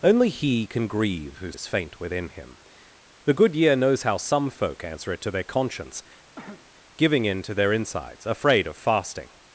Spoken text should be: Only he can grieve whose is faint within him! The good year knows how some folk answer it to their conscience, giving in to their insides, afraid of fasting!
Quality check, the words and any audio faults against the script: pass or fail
fail